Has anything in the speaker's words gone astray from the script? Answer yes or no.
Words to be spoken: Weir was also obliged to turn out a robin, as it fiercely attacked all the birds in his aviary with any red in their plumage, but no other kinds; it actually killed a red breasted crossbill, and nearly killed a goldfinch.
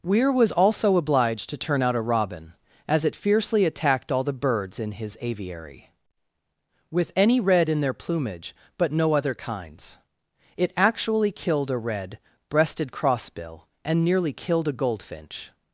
no